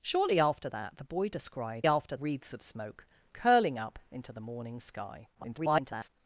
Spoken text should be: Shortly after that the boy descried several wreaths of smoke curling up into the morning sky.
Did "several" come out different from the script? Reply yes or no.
yes